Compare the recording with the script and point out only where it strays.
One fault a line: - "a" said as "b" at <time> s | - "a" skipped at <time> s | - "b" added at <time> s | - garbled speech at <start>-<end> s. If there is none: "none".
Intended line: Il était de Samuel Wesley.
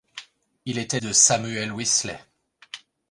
none